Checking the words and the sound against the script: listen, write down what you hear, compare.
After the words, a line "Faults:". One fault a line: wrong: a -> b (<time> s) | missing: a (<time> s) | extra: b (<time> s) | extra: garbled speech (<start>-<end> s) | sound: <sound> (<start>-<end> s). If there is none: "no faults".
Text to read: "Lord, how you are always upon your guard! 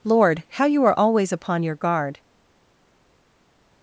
"Lord, how you are always upon your guard!
Faults:
no faults